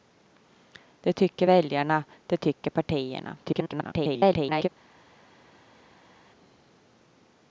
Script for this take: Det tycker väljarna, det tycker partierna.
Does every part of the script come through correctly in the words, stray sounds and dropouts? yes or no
no